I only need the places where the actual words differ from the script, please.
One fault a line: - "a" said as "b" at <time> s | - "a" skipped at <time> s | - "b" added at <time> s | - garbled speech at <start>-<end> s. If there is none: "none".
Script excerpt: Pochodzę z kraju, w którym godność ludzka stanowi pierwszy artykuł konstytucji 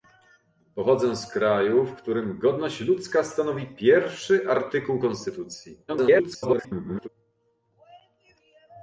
- garbled speech at 5.9-7.1 s